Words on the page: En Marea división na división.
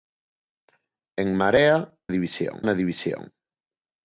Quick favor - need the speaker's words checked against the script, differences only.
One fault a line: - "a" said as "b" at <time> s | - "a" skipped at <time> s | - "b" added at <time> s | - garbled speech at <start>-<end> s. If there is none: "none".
none